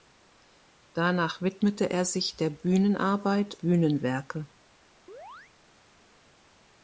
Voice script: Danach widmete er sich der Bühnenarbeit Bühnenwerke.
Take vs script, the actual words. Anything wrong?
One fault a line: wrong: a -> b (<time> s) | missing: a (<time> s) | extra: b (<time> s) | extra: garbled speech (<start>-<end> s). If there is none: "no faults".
no faults